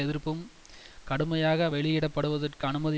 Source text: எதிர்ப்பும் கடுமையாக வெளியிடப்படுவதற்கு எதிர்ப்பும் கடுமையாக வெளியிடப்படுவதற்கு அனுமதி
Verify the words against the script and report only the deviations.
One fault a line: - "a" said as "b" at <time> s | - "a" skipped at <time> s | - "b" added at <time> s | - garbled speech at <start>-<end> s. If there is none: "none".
- "எதிர்ப்பும் கடுமையாக வெளியிடப்படுவதற்கு" skipped at 2.7 s